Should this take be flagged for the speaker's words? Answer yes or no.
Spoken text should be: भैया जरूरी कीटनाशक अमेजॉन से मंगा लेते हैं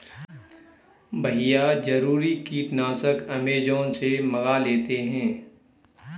no